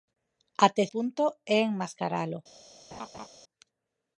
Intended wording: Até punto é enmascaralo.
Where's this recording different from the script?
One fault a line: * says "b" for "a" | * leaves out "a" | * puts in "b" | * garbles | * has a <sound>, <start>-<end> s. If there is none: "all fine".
* has a laugh, 2.9-3.3 s